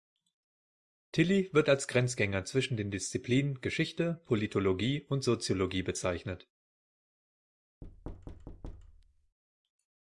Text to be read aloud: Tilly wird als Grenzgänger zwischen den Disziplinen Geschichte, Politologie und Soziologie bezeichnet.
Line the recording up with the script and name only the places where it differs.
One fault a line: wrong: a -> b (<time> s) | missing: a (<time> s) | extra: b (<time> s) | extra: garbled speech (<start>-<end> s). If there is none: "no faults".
no faults